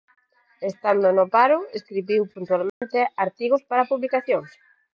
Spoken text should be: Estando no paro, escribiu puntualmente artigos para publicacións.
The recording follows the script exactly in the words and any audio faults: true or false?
false